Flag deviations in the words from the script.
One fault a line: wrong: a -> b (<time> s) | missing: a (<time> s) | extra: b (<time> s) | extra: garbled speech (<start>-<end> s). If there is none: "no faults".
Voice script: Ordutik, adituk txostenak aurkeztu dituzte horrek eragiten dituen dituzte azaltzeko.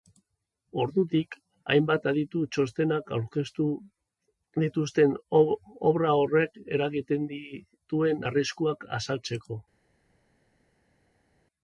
extra: hainbat (1.7 s)
extra: obra (5.9 s)
wrong: dituzte -> arriskuak (8.3 s)